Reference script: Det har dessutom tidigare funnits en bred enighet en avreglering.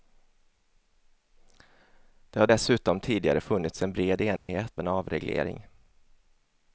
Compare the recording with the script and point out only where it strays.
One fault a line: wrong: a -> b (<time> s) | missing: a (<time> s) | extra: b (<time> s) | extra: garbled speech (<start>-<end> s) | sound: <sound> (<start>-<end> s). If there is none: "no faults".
sound: dropout (4.4-4.5 s)